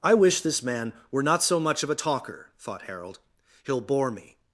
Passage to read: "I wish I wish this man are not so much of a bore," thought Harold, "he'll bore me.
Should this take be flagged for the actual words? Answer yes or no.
yes